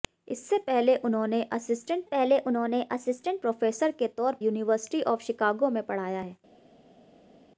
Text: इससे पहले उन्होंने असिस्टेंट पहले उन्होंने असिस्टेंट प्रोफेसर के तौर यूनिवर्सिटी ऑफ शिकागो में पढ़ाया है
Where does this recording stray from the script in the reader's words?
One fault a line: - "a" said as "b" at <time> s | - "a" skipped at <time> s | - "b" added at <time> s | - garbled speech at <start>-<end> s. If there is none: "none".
none